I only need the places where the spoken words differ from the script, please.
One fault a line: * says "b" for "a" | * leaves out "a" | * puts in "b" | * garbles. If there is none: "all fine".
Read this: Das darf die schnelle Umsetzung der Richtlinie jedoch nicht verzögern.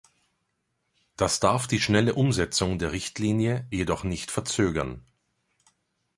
all fine